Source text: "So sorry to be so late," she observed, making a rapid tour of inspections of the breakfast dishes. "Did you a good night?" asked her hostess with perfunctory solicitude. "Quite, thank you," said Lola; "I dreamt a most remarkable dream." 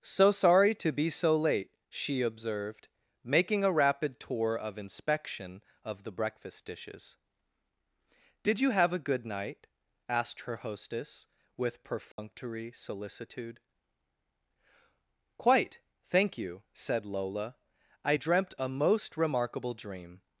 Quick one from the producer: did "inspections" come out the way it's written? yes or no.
no